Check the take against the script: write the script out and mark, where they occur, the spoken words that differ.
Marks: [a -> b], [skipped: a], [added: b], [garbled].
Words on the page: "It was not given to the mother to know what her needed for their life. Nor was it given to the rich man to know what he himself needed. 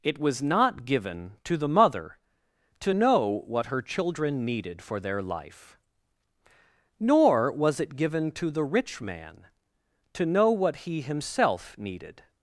"It was not given to the mother to know what her [added: children] needed for their life. Nor was it given to the rich man to know what he himself needed.